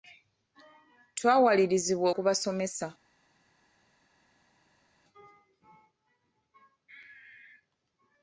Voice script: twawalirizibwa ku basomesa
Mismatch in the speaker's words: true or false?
false